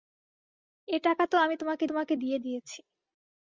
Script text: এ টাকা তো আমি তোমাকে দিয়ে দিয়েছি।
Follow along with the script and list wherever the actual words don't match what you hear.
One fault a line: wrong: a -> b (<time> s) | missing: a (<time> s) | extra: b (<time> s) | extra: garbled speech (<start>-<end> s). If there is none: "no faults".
extra: তোমাকে (1.9 s)